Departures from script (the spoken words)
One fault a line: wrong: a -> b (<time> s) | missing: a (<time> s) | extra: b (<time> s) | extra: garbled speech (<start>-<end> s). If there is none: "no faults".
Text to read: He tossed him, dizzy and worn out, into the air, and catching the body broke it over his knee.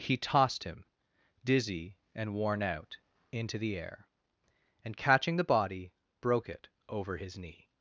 no faults